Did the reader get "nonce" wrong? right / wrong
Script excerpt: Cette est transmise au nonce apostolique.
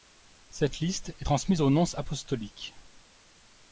right